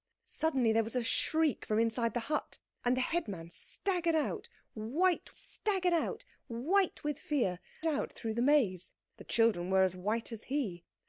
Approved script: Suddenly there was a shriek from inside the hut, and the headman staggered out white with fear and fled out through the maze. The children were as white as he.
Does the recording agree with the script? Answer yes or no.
no